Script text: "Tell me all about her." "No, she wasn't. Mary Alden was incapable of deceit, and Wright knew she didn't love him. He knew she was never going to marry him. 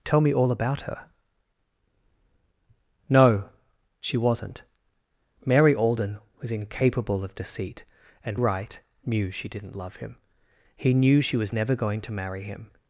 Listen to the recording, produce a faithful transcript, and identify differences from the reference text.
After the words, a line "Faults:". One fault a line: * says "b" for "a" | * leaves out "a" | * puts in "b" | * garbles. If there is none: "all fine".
"Tell me all about her." "No, she wasn't. Mary Alden was incapable of deceit, and Wright knew she didn't love him. He knew she was never going to marry him.
Faults:
all fine